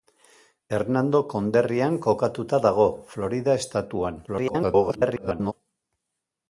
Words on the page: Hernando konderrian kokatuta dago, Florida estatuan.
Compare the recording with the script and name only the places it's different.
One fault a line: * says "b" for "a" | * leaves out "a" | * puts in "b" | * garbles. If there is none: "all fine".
* garbles